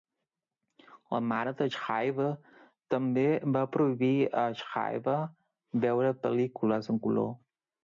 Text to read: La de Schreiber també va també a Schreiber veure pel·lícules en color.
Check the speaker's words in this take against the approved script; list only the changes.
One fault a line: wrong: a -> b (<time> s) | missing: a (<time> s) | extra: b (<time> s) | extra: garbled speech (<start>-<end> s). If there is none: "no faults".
extra: mare (1.3 s)
wrong: també -> prohibir (3.7 s)